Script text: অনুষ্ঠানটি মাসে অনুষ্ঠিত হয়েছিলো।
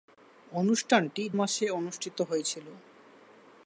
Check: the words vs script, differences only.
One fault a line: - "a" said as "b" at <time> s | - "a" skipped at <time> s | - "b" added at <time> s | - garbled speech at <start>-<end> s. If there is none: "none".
none